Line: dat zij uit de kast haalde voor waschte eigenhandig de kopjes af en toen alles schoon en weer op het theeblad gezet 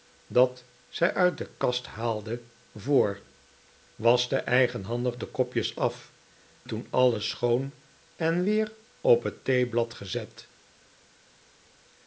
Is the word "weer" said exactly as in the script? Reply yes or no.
yes